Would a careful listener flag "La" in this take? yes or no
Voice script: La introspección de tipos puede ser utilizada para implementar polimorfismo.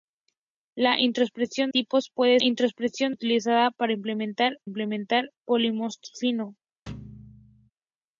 no